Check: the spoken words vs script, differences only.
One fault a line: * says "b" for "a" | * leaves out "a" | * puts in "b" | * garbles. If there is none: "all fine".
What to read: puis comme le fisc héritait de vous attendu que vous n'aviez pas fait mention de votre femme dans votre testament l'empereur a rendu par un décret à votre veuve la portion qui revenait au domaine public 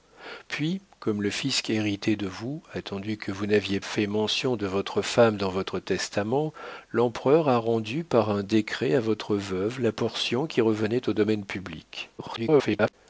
* leaves out "pas"
* garbles